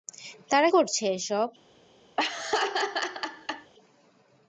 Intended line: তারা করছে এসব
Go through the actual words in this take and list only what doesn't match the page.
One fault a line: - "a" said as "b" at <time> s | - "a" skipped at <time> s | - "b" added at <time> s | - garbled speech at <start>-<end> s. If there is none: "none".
none